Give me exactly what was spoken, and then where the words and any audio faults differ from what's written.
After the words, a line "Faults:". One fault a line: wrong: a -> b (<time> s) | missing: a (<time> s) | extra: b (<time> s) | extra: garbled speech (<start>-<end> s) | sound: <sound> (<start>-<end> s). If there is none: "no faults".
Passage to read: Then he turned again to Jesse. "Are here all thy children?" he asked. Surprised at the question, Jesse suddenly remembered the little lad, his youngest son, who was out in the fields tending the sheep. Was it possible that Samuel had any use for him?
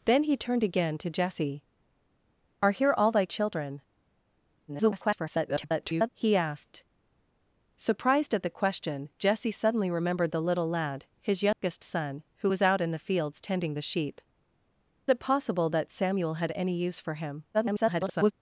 Then he turned again to Jesse. "Are here all thy children?" [garbled] he asked. Surprised at the question, Jesse suddenly remembered the little lad, his youngest son, who was out in the fields tending the sheep. It possible that Samuel had any use for him? [garbled]
Faults:
extra: garbled speech (4.7-6.1 s)
sound: dropout (11.5-11.6 s)
missing: Was (14.2 s)
extra: garbled speech (17.5-18.3 s)